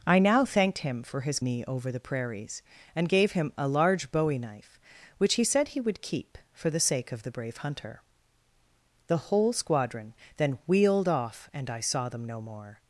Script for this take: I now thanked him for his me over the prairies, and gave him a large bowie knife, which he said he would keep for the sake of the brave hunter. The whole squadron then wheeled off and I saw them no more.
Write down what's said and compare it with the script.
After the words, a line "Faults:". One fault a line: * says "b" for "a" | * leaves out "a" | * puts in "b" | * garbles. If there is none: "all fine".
I now thanked him for his me over the prairies, and gave him a large bowie knife, which he said he would keep for the sake of the brave hunter. The whole squadron then wheeled off and I saw them no more.
Faults:
all fine